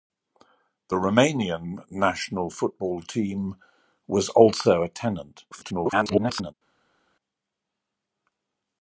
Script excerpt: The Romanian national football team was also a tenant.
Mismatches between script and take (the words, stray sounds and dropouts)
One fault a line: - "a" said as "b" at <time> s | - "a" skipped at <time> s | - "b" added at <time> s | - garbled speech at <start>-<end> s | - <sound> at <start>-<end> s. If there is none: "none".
- garbled speech at 5.5-6.5 s